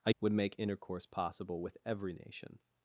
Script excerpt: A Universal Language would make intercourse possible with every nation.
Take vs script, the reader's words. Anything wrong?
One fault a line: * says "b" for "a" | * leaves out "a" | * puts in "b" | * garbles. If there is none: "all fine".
* leaves out "Universal Language"